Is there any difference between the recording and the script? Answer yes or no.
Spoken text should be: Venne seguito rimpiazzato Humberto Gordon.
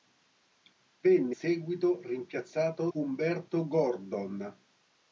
no